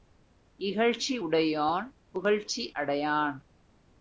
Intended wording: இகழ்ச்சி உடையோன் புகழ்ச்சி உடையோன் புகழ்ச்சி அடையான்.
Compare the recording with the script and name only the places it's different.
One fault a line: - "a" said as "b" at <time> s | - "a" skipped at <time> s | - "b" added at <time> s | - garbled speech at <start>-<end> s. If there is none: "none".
- "உடையோன் புகழ்ச்சி" skipped at 2.7 s